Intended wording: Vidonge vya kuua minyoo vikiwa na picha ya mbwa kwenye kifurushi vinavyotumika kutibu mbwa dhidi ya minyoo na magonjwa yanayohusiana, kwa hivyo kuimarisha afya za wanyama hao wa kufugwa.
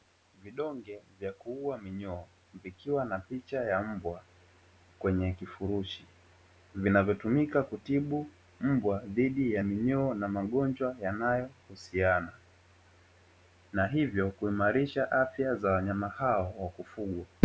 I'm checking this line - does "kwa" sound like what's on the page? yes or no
no